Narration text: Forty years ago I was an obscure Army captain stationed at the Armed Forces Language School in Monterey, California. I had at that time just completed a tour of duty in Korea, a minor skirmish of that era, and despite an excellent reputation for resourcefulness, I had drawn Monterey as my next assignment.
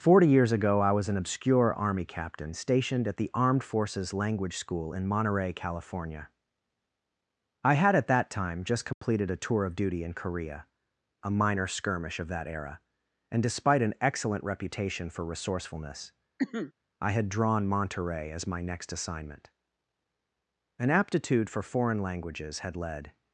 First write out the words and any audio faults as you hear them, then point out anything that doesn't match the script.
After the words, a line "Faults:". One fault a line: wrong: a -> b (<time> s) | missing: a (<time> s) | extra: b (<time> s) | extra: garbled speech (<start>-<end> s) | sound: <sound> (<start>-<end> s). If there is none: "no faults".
Forty years ago I was an obscure Army captain stationed at the Armed Forces Language School in Monterey, California. I had at that time just completed a tour of duty in Korea, a minor skirmish of that era, and despite an excellent reputation for resourcefulness, I had drawn Monterey as my next assignment. An aptitude for foreign languages had led
Faults:
sound: dropout (8.9-9.0 s)
sound: cough (16.4-16.7 s)
extra: An aptitude for foreign languages had led (20.8 s)